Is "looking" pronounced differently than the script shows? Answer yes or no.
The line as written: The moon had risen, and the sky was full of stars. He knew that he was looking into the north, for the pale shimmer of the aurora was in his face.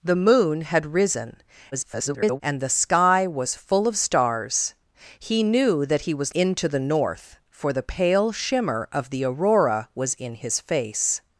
yes